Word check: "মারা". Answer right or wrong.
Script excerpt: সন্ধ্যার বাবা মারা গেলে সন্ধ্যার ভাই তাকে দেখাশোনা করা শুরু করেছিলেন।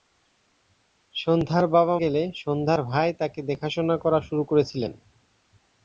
wrong